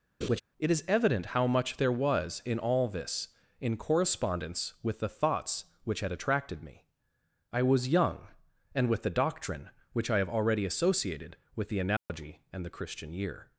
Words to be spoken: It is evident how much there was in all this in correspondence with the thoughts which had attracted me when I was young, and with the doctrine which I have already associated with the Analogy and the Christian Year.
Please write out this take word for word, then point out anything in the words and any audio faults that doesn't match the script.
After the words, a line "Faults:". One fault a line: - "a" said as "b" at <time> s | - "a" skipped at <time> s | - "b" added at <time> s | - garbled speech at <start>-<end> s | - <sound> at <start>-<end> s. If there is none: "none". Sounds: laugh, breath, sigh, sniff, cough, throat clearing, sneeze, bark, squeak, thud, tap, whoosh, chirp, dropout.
It is evident how much there was in all this in correspondence with the thoughts which had attracted me I was young, and with the doctrine which I have already associated with the Analogy and the Christian Year.
Faults:
- laugh at 0.2-0.4 s
- "when" skipped at 6.9 s
- dropout at 12.0-12.1 s